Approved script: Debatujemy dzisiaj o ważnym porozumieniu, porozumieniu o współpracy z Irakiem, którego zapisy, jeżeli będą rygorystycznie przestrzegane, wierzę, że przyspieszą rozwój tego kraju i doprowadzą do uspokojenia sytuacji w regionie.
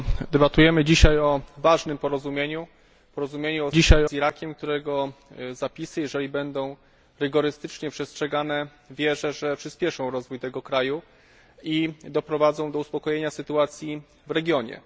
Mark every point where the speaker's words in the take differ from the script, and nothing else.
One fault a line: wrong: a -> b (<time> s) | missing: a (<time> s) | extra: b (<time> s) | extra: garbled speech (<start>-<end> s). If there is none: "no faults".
wrong: współpracy -> dzisiaj (3.7 s)